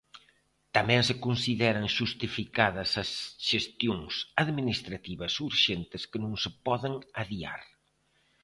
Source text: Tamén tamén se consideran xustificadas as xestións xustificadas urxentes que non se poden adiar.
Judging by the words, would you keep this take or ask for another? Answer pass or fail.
fail